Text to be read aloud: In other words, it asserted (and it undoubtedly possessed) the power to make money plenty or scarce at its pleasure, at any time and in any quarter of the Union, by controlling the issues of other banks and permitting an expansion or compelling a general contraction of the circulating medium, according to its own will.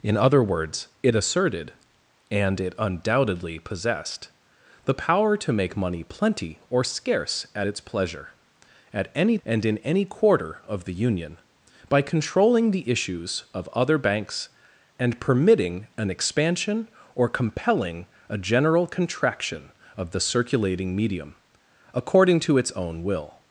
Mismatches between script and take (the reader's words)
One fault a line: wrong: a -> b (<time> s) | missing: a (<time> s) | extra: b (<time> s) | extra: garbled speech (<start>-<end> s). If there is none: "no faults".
missing: time (9.4 s)